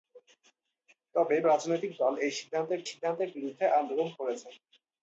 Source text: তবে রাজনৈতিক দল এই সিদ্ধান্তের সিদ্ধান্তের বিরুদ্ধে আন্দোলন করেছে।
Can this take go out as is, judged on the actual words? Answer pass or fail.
pass